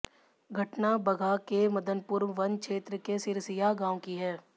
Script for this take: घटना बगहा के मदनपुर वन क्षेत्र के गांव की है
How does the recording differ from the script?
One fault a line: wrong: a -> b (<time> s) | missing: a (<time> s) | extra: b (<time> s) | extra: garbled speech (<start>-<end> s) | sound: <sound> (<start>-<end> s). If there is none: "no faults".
extra: सिरसिया (3.2 s)